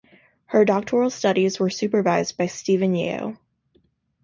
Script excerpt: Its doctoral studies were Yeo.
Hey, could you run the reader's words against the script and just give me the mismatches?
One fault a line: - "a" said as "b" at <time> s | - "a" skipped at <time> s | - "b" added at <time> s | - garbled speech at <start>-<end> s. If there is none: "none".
- "Its" said as "Her" at 0.5 s
- "supervised by Stephen" added at 1.7 s